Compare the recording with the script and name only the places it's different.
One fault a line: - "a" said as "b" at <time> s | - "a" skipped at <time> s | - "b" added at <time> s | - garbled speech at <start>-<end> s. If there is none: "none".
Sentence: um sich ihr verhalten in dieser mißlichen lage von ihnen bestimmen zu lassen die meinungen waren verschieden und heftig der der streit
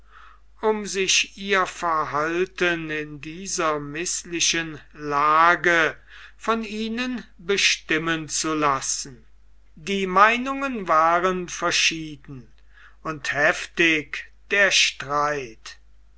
- "der" skipped at 14.7 s